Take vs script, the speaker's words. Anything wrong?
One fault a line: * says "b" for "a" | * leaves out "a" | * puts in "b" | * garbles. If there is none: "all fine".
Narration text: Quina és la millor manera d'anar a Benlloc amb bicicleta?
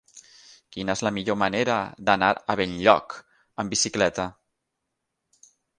all fine